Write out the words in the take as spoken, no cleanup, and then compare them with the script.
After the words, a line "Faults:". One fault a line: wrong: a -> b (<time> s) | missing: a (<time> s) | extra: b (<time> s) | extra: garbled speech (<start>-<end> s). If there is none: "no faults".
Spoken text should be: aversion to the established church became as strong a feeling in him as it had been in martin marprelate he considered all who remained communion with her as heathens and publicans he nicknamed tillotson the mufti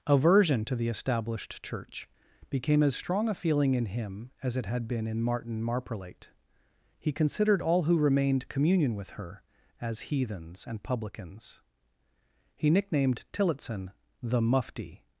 aversion to the established church became as strong a feeling in him as it had been in martin marprelate he considered all who remained communion with her as heathens and publicans he nicknamed tillotson the mufti
Faults:
no faults